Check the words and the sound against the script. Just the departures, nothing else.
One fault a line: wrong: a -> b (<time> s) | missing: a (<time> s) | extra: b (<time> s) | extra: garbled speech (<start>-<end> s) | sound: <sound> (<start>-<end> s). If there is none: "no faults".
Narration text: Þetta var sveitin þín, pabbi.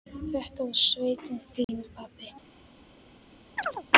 sound: dropout (1.6-1.7 s)
sound: chirp (3.6-3.8 s)